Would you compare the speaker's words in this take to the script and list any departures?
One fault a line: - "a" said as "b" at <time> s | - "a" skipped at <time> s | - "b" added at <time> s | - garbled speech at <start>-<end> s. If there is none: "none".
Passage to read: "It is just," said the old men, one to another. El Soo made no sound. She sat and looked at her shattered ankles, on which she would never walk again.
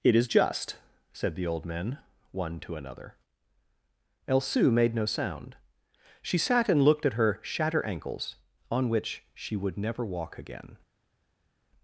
- "shattered" said as "shatter" at 7.4 s